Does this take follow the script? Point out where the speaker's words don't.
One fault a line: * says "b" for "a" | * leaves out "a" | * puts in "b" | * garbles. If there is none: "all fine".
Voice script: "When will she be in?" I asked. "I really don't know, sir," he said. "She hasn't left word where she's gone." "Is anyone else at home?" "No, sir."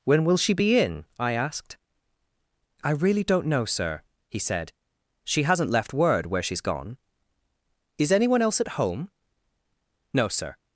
all fine